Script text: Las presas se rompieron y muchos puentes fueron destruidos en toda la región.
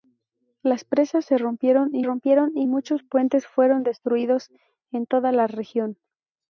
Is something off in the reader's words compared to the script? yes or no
yes